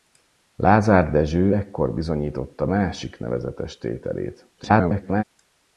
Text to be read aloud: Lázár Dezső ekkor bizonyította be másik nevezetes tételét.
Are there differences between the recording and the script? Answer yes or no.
yes